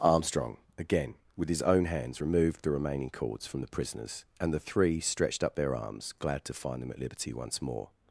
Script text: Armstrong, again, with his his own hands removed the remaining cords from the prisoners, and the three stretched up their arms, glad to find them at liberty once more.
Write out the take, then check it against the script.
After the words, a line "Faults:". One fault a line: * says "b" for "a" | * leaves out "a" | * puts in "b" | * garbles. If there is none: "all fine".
Armstrong, again, with his own hands removed the remaining cords from the prisoners, and the three stretched up their arms, glad to find them at liberty once more.
Faults:
* leaves out "his"